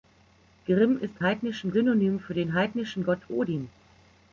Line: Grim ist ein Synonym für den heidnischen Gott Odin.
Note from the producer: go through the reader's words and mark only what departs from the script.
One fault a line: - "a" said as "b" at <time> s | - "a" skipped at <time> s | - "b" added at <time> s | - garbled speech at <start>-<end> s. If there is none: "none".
- "ein" said as "heidnischen" at 1.2 s